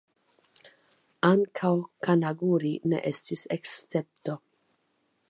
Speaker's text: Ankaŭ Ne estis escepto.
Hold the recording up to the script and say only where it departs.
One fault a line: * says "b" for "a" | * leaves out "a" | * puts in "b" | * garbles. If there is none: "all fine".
* puts in "Kanaguri"